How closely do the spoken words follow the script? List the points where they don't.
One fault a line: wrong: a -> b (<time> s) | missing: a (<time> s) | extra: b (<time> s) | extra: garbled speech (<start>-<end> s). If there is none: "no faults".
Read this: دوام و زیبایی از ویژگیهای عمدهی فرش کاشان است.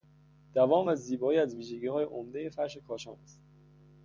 no faults